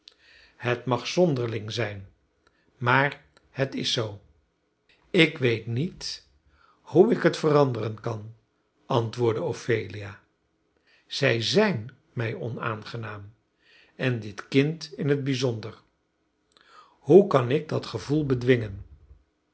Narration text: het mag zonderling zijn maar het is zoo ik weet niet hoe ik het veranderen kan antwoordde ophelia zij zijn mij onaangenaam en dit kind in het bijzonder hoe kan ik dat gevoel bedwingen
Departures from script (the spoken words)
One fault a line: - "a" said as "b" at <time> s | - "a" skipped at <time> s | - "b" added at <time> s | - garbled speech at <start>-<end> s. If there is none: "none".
none